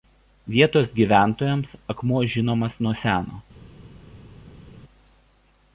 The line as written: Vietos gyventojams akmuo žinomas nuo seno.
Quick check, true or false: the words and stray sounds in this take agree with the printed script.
true